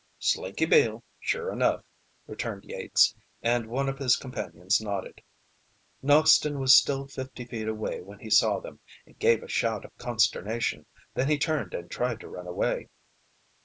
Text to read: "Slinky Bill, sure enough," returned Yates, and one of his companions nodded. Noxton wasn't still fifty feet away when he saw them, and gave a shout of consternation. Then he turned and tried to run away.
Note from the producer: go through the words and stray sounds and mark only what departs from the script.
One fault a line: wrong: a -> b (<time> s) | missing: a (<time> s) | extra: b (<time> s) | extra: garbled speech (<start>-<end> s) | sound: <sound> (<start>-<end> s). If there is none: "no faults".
wrong: wasn't -> was (6.6 s)